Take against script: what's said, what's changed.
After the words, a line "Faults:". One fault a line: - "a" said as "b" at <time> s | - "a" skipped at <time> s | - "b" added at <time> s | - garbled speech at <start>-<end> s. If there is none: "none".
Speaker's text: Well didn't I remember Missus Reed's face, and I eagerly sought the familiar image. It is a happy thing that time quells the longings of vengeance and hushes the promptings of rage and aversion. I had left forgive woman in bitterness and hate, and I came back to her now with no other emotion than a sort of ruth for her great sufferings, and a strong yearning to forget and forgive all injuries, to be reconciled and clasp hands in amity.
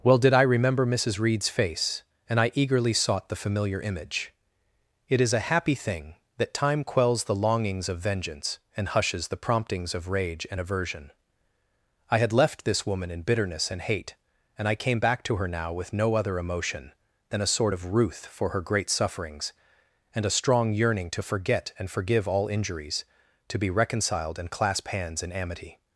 Well did I remember Missus Reed's face, and I eagerly sought the familiar image. It is a happy thing that time quells the longings of vengeance and hushes the promptings of rage and aversion. I had left this woman in bitterness and hate, and I came back to her now with no other emotion than a sort of ruth for her great sufferings, and a strong yearning to forget and forgive all injuries, to be reconciled and clasp hands in amity.
Faults:
- "didn't" said as "did" at 0.2 s
- "forgive" said as "this" at 12.6 s